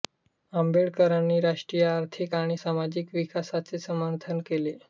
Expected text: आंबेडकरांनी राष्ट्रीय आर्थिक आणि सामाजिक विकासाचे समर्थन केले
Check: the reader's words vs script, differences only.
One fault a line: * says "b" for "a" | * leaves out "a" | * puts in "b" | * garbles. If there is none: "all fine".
all fine